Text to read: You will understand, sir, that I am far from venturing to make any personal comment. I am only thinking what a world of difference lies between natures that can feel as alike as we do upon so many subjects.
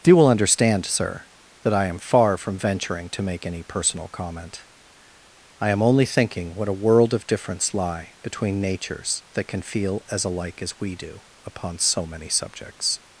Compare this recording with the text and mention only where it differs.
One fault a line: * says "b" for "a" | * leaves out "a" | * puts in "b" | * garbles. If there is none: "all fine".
* says "lie" for "lies"